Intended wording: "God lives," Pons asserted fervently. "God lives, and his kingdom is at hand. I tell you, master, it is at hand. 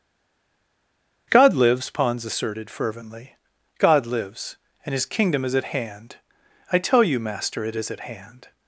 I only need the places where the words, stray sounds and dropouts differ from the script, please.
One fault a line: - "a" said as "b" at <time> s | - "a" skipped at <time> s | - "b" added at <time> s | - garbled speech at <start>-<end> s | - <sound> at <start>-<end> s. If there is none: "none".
none